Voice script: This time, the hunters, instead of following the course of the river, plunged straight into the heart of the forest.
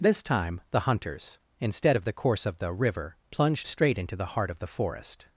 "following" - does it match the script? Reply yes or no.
no